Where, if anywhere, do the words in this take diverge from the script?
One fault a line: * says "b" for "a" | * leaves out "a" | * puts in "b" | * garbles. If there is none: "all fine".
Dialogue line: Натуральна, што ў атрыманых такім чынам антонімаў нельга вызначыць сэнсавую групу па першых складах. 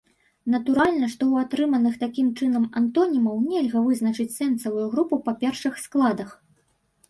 all fine